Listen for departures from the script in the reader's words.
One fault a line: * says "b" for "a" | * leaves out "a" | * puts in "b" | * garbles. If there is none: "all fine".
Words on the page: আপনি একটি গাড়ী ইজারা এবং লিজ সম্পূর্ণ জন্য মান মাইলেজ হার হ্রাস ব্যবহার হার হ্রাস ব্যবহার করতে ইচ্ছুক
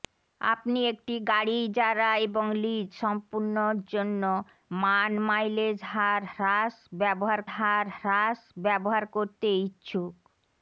all fine